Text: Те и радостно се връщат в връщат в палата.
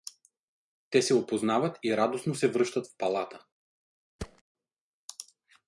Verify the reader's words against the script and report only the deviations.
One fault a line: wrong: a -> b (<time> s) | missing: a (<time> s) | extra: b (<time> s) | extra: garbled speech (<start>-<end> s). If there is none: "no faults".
extra: се опознават (1.0 s)
missing: връщат в (3.0 s)